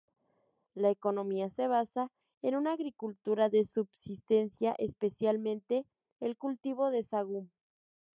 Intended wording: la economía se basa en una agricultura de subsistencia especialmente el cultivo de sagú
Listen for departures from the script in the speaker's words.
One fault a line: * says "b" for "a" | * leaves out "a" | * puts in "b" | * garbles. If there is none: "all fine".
all fine